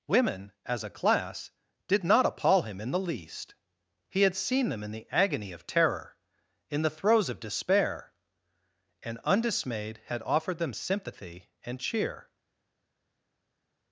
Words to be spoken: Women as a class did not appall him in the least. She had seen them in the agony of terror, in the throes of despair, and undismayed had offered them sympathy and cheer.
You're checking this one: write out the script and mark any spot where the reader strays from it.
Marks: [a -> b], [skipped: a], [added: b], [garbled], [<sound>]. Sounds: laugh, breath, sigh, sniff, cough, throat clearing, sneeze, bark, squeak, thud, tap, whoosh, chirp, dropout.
Women as a class did not appall him in the least. [She -> He] had seen them in the agony of terror, in the throes of despair, and undismayed had offered them sympathy and cheer.